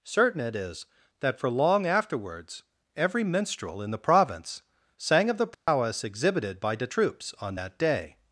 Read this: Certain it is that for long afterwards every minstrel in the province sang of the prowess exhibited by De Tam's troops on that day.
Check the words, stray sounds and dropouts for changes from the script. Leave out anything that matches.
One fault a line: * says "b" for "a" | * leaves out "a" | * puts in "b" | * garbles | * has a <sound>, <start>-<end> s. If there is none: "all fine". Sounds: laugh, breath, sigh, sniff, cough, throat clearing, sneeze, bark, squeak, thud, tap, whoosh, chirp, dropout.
* has a dropout, 5.5-5.7 s
* leaves out "Tam's"